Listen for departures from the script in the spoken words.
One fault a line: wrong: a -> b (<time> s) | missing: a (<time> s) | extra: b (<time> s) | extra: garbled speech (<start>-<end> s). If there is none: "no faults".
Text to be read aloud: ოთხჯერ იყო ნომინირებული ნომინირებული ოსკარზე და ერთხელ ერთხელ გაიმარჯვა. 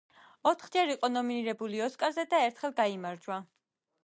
missing: ნომინირებული (1.8 s)
missing: ერთხელ (2.8 s)